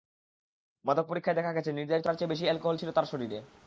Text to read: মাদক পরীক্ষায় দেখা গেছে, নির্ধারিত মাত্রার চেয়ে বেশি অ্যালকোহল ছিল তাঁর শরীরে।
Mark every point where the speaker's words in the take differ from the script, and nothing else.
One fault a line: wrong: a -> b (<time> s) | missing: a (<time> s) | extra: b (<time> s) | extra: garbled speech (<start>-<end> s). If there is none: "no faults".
no faults